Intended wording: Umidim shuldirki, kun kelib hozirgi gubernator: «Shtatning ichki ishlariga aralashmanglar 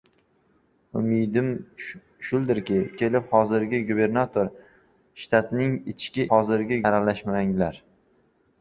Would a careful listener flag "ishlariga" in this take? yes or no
yes